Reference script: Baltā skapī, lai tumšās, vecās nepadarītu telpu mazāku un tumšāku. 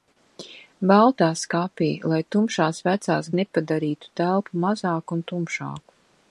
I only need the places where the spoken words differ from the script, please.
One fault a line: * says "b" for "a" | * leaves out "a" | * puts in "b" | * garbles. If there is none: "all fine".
all fine